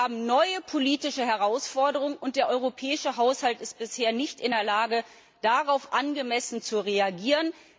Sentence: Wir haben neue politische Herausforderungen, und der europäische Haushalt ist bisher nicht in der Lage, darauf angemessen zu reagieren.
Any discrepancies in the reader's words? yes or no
no